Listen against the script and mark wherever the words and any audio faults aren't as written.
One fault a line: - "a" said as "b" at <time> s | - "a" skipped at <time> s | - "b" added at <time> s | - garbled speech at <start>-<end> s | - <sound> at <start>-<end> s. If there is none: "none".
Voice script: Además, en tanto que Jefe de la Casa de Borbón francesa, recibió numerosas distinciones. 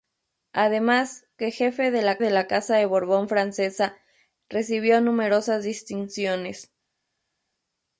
- "en tanto que Jefe" said as "que Jefe de la" at 1.4 s